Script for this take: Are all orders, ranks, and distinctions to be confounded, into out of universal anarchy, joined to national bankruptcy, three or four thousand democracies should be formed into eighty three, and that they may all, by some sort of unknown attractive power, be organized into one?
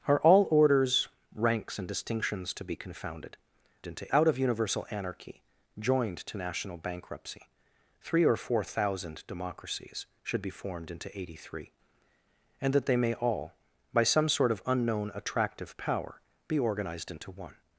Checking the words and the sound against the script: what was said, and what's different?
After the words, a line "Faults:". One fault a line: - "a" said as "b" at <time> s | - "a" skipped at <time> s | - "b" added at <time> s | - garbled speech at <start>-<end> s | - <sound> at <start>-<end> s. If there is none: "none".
Are all orders, ranks, and distinctions to be confounded, into out of universal anarchy, joined to national bankruptcy, three or four thousand democracies should be formed into eighty three, and that they may all, by some sort of unknown attractive power, be organized into one?
Faults:
none